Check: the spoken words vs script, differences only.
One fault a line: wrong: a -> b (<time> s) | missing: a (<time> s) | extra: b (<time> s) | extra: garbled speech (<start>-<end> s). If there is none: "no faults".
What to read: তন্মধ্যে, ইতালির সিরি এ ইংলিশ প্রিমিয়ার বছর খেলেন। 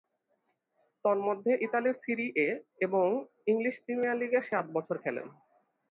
extra: এবং (2.8 s)
extra: লীগে সাত (4.2 s)